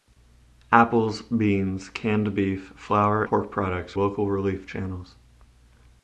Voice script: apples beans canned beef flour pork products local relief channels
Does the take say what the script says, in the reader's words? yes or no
yes